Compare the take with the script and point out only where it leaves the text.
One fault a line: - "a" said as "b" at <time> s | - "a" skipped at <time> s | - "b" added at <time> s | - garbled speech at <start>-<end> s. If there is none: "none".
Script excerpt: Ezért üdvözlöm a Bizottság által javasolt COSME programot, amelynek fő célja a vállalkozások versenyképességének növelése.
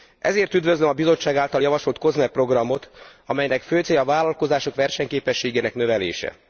none